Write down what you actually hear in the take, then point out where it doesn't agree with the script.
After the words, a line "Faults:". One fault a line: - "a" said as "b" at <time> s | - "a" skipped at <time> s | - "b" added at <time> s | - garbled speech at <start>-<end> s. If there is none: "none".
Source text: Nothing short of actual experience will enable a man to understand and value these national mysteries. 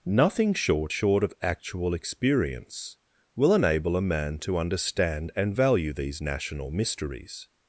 Nothing short short of actual experience will enable a man to understand and value these national mysteries.
Faults:
- "short" added at 0.9 s